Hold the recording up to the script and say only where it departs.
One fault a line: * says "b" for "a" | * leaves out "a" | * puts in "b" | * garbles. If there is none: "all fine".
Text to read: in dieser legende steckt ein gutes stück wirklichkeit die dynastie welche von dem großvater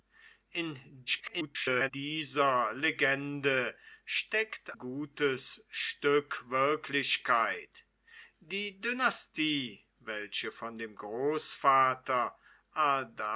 * garbles
* leaves out "ein"